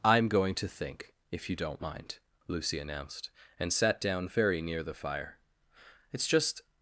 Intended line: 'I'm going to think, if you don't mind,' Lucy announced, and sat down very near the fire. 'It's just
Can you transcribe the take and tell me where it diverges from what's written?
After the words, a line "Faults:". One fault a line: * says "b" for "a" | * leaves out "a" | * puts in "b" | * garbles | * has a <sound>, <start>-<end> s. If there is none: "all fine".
'I'm going to think, if you don't mind,' Lucy announced, and sat down very near the fire. 'It's just
Faults:
all fine